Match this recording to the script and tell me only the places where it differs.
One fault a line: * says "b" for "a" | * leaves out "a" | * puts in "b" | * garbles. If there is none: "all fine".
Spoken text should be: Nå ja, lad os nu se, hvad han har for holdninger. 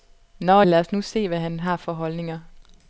* leaves out "ja"